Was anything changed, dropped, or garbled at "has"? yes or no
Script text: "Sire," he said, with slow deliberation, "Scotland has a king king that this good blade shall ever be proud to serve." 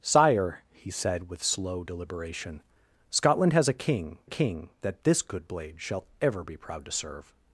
no